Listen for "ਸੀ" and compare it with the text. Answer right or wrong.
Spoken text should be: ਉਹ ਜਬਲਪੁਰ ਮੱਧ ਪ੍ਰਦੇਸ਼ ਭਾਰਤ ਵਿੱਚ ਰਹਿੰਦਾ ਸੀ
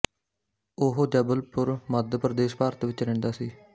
right